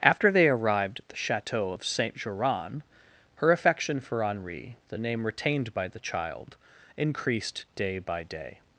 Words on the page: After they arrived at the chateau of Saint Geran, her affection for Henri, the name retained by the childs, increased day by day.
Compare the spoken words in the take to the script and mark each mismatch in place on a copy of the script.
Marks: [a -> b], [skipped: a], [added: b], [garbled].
After they arrived at the chateau of Saint Geran, her affection for Henri, the name retained by the [childs, -> child] increased day by day.